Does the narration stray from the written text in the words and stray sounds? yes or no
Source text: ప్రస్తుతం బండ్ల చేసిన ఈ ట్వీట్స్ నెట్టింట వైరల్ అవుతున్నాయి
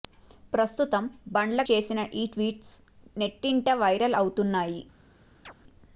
yes